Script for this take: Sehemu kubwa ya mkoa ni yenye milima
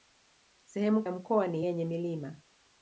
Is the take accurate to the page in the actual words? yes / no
no